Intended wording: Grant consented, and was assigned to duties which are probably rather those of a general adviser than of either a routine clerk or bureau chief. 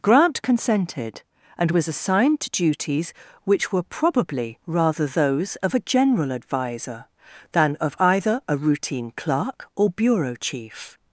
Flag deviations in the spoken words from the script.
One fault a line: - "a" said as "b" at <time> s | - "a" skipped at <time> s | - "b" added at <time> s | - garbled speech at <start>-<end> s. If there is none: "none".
- "are" said as "were" at 3.7 s